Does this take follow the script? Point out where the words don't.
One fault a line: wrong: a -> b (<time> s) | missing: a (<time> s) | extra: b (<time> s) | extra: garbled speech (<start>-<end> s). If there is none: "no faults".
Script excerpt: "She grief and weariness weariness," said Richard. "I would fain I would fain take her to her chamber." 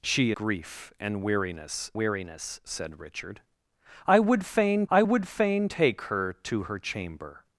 no faults